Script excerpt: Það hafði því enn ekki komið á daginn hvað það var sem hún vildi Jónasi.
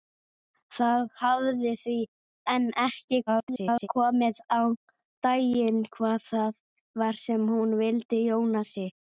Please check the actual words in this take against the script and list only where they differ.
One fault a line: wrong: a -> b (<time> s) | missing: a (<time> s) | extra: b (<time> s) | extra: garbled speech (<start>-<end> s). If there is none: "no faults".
extra: garbled speech (3.3-3.9 s)